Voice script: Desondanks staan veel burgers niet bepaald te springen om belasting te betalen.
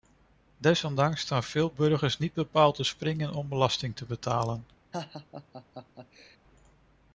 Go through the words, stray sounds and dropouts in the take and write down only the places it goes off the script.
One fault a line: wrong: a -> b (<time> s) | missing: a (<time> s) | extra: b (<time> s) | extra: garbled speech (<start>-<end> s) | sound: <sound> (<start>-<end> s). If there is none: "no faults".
sound: laugh (4.9-6.4 s)